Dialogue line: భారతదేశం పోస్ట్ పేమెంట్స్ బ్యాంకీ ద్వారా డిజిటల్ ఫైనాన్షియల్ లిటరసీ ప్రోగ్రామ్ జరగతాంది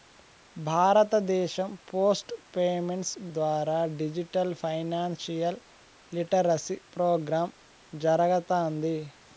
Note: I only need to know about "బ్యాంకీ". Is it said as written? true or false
false